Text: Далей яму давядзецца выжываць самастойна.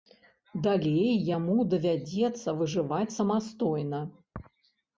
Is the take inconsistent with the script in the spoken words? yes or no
no